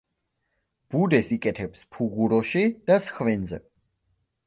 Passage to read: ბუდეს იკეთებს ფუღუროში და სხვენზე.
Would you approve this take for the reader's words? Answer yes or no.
yes